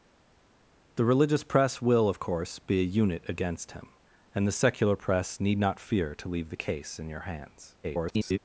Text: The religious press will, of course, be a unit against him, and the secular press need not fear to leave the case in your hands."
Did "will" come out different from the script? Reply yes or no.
no